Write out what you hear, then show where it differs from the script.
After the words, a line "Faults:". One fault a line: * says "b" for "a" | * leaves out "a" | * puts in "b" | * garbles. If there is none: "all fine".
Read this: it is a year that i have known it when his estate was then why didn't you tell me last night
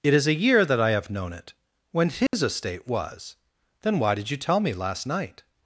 it is a year that i have known it when his estate was then why did you tell me last night
Faults:
* says "did" for "didn't"